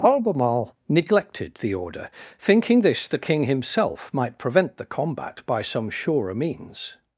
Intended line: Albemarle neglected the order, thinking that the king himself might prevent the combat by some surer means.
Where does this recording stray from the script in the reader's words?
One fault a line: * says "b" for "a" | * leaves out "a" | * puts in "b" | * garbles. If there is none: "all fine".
* says "this" for "that"